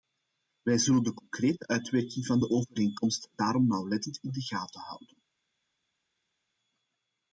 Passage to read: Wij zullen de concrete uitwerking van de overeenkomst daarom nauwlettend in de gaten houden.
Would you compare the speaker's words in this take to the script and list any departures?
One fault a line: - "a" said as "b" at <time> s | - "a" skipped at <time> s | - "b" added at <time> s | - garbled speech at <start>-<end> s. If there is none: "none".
none